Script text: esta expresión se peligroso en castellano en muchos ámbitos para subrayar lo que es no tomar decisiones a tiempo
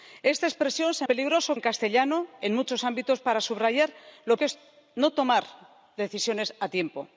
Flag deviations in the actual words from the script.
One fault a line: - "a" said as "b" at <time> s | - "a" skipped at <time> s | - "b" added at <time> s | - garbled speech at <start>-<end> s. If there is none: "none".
none